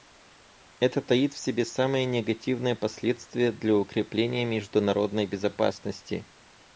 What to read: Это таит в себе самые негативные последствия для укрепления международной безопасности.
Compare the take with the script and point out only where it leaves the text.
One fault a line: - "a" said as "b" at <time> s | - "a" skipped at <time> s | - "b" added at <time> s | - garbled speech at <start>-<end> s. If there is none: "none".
none